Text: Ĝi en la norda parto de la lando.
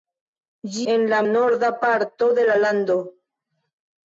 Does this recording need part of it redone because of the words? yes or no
no